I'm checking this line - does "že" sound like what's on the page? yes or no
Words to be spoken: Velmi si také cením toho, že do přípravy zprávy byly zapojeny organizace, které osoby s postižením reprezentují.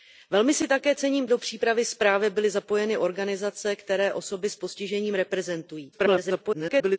no